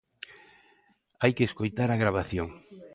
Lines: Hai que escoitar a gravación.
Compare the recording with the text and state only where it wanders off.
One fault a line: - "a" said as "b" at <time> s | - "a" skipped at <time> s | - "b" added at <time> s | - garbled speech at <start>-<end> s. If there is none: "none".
none